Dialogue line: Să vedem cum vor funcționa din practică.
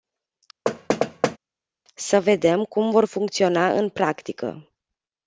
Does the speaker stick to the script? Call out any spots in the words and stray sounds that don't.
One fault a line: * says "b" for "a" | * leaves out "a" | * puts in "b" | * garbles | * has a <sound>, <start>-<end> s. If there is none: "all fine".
* has a thud, 0.7-1.4 s
* says "în" for "din"